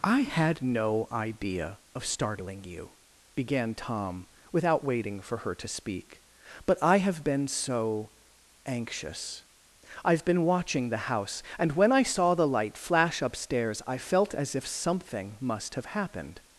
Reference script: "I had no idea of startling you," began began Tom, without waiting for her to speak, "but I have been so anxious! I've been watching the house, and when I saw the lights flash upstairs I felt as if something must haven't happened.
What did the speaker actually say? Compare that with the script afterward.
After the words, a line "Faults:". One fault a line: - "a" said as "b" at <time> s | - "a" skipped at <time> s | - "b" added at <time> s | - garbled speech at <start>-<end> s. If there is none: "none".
"I had no idea of startling you," began Tom, without waiting for her to speak, "but I have been so anxious! I've been watching the house, and when I saw the light flash upstairs I felt as if something must have happened.
Faults:
- "began" skipped at 3.8 s
- "lights" said as "light" at 12.5 s
- "haven't" said as "have" at 15.7 s